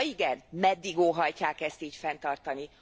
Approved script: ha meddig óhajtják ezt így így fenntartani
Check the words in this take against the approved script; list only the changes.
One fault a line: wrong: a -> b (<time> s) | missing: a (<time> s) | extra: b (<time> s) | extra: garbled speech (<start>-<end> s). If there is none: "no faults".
extra: igen (0.1 s)
missing: így (1.9 s)